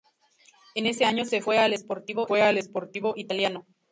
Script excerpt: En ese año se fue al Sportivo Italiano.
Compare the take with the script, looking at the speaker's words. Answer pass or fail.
fail